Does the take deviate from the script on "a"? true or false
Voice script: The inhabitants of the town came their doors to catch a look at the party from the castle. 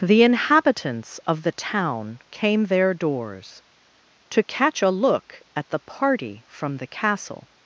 false